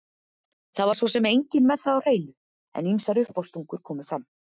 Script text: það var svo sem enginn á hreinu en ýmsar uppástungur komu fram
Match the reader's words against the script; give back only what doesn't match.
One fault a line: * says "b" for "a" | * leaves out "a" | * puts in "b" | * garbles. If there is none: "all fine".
* puts in "með það"